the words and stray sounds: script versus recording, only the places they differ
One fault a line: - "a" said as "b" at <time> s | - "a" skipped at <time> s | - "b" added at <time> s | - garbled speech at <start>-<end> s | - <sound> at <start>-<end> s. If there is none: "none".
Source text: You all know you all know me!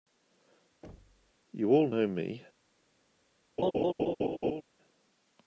- thud at 0.8-1.3 s
- "you all know" skipped at 2.1 s
- laugh at 3.6-4.6 s